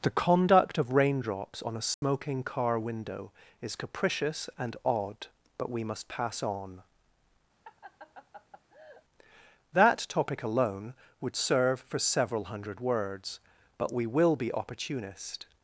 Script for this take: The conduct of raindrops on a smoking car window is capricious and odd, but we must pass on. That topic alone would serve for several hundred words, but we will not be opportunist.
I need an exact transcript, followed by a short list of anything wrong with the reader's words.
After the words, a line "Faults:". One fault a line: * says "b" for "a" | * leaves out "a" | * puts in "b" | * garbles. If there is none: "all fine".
The conduct of raindrops on a smoking car window is capricious and odd, but we must pass on. That topic alone would serve for several hundred words, but we will be opportunist.
Faults:
* leaves out "not"